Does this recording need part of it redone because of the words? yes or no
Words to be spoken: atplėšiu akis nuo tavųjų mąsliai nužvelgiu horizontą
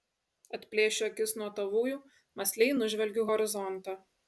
no